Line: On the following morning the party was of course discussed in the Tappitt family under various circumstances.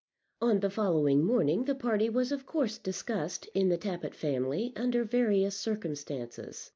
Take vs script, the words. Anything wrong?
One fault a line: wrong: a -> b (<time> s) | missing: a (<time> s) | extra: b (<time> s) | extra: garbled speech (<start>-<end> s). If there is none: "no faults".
no faults